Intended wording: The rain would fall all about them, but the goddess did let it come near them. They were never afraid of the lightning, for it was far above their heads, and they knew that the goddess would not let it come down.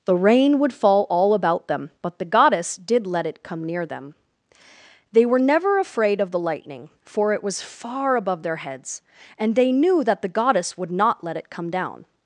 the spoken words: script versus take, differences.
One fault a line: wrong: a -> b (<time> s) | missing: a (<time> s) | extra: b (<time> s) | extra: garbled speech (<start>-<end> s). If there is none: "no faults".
no faults